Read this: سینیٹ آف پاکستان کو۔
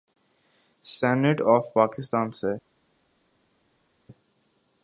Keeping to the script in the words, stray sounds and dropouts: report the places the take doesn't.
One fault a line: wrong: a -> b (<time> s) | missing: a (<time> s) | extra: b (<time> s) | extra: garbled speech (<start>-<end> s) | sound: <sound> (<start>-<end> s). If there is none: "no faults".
wrong: کو -> سے (2.3 s)